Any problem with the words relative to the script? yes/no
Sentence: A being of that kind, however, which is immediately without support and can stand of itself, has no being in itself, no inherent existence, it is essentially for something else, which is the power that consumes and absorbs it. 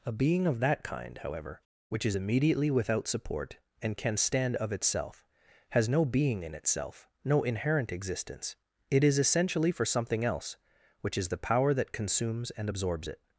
no